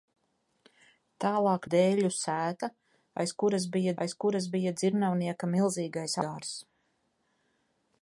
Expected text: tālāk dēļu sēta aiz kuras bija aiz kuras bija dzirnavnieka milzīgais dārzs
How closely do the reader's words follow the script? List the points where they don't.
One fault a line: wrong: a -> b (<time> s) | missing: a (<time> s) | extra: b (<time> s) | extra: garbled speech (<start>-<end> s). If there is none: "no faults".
no faults